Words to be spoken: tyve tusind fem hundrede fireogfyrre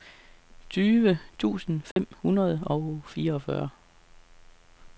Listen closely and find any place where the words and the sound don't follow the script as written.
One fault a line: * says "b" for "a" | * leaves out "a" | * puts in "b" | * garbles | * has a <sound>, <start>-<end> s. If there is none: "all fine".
* has a dropout, 1.9-2.0 s
* puts in "og"